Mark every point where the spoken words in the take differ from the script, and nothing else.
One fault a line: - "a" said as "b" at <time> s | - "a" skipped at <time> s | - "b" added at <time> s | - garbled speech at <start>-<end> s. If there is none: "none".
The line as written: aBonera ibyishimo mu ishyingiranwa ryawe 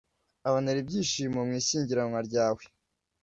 none